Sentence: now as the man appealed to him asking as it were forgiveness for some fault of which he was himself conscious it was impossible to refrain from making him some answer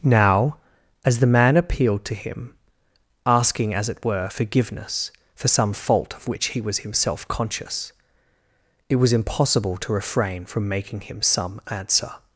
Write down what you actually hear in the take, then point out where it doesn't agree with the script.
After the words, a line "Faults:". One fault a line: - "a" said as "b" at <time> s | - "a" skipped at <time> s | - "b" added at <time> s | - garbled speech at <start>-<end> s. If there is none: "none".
now as the man appealed to him asking as it were forgiveness for some fault of which he was himself conscious it was impossible to refrain from making him some answer
Faults:
none